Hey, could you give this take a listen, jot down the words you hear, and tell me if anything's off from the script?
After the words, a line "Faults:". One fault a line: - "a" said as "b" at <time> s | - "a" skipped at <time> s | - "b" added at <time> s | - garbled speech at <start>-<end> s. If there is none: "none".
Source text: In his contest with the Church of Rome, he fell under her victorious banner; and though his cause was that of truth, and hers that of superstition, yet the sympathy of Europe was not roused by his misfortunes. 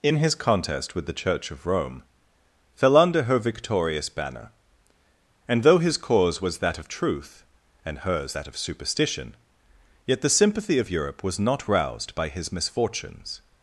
In his contest with the Church of Rome, fell under her victorious banner; and though his cause was that of truth, and hers that of superstition, yet the sympathy of Europe was not roused by his misfortunes.
Faults:
- "he" skipped at 2.0 s